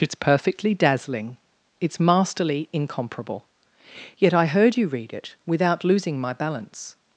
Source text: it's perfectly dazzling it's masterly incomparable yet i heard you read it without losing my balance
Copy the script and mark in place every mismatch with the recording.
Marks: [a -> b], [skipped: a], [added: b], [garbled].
it's perfectly dazzling it's masterly incomparable yet i heard you read it without losing my balance